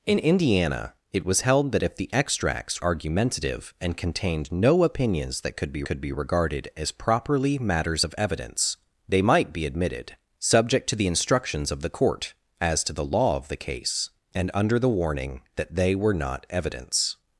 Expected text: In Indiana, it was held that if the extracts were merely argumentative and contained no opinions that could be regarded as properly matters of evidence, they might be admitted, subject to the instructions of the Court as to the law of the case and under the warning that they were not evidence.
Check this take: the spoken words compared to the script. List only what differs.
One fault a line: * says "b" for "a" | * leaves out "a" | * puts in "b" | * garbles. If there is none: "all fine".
* leaves out "were merely"
* puts in "could be"